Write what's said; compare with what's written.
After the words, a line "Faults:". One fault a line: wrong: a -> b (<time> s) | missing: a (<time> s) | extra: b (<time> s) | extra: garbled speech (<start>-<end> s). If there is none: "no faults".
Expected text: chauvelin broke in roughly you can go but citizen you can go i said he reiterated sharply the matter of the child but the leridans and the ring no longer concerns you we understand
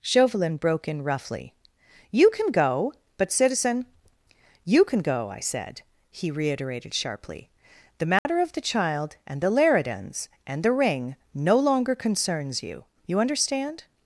chauvelin broke in roughly you can go but citizen you can go i said he reiterated sharply the matter of the child and the leridans and the ring no longer concerns you you understand
Faults:
wrong: but -> and (9.3 s)
wrong: we -> you (13.1 s)